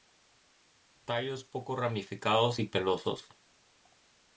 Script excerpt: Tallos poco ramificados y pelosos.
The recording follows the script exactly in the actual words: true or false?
true